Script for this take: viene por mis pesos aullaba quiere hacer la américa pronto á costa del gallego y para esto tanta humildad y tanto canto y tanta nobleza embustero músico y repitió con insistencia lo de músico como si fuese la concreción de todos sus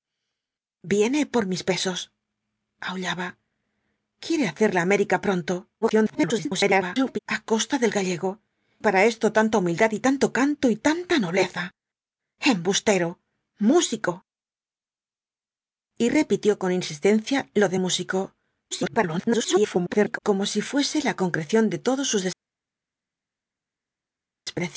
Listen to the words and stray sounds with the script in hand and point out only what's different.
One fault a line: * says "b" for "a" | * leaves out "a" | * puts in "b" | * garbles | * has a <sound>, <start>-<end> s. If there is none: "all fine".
* garbles
* leaves out "y"
* garbles